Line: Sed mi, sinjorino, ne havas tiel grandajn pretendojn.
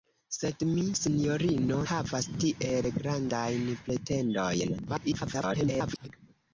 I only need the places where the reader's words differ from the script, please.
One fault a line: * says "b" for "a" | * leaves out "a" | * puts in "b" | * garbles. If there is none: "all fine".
* leaves out "ne"
* garbles